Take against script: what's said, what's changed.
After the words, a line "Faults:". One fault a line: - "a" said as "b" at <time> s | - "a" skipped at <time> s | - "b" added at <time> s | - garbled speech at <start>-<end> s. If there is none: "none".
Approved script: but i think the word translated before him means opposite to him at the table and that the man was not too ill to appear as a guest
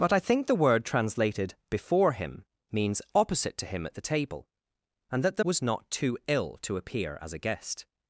but i think the word translated before him means opposite to him at the table and that the was not too ill to appear as a guest
Faults:
- "man" skipped at 5.4 s